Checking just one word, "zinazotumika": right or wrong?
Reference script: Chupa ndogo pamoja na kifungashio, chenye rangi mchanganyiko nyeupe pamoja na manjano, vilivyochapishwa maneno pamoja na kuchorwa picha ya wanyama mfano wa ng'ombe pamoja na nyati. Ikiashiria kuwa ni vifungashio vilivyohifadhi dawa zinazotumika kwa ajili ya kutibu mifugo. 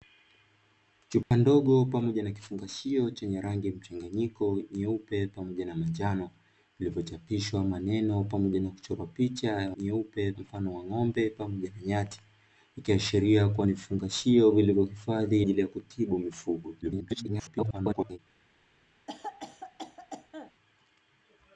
wrong